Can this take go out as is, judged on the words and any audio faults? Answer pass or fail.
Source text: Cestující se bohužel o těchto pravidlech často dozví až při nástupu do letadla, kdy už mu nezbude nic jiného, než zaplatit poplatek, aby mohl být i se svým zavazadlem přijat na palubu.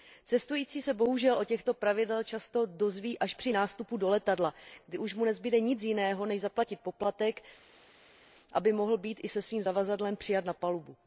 pass